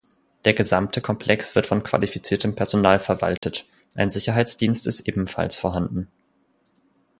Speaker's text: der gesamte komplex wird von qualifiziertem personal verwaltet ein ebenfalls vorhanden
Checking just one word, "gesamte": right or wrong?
right